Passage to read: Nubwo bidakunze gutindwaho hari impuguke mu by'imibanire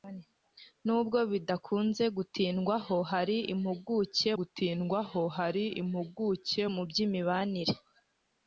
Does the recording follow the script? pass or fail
fail